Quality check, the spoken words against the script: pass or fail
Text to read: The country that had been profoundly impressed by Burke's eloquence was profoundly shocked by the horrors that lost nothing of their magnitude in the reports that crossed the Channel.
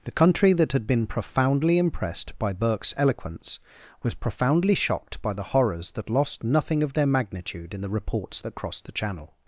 pass